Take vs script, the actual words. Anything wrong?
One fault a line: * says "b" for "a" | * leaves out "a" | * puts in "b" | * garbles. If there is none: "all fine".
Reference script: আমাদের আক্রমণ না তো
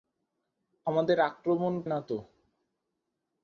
all fine